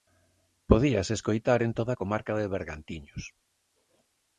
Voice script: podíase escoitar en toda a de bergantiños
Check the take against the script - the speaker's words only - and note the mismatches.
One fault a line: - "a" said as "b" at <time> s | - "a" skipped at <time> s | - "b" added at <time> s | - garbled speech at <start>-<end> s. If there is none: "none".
- "comarca" added at 2.0 s